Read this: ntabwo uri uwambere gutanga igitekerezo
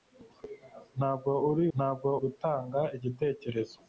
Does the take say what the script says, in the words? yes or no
no